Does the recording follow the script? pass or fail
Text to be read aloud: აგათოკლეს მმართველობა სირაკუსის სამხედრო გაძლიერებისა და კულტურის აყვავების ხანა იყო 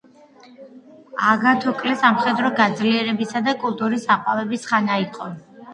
fail